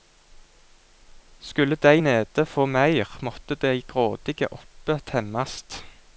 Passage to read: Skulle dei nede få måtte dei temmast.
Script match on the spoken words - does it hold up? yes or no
no